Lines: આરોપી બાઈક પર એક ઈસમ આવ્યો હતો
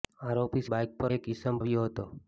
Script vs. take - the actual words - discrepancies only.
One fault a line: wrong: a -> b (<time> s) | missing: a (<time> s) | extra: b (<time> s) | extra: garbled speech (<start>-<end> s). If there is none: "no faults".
no faults